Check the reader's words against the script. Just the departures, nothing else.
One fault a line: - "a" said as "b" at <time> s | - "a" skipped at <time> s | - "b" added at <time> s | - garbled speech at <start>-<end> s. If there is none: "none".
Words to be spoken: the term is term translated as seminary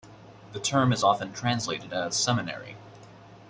- "term" said as "often" at 1.0 s